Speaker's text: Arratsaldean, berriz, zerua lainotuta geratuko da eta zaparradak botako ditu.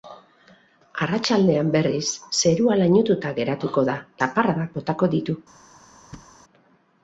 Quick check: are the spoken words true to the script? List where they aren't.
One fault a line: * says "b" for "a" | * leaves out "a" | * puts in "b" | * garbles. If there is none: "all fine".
* leaves out "eta"